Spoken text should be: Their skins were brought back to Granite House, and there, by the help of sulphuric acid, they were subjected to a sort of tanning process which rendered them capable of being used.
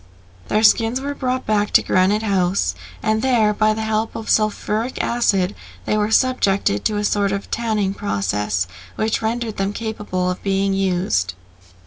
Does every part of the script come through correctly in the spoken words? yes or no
yes